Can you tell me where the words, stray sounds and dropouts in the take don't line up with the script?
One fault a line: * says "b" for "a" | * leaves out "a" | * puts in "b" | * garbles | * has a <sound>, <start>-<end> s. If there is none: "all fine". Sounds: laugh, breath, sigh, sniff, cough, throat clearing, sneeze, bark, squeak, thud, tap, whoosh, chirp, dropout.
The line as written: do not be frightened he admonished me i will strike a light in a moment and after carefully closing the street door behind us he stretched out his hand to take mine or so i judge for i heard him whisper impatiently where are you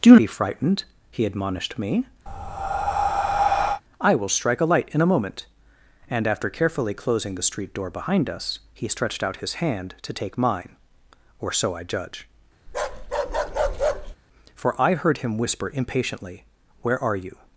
* leaves out "not"
* has a breath, 2.3-3.8 s
* has a bark, 12.7-14.2 s